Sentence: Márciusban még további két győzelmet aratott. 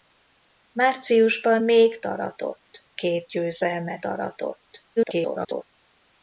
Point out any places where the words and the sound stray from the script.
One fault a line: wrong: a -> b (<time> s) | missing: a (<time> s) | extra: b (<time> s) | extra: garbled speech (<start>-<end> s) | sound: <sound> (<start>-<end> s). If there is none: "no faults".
wrong: további -> aratott (2.1 s)
extra: garbled speech (5.0-5.6 s)